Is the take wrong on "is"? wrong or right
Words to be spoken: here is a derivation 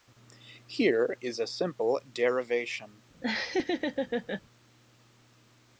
right